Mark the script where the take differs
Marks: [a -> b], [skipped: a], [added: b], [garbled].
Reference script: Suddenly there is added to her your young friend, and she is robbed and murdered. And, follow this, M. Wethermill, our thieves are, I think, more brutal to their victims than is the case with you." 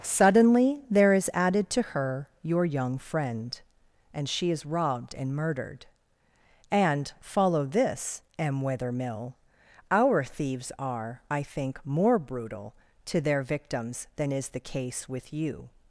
Suddenly there is added to her your young friend, and she is robbed and murdered. And, follow this, M. Wethermill, our thieves are, I think, more brutal to their victims than is the case with you."